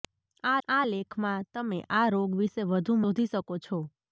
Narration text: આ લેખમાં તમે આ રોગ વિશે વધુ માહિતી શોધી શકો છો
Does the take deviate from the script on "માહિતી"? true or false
true